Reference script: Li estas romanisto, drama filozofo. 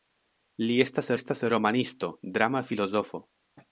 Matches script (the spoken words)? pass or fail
fail